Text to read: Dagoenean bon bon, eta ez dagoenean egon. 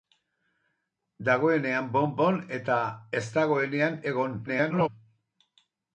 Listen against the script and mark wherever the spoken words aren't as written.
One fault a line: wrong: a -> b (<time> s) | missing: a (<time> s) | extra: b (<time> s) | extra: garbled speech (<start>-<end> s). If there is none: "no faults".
extra: garbled speech (4.5-4.9 s)